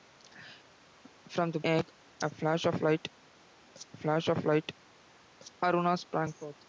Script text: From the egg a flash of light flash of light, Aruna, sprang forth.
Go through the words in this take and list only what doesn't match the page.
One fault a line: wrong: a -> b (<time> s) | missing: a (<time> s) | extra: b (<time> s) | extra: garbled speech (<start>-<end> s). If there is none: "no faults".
no faults